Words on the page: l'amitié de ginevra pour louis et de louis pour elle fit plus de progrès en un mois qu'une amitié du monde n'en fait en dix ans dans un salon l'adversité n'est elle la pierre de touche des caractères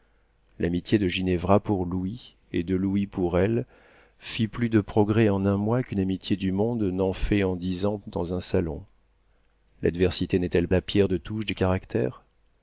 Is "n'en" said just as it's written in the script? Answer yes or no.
yes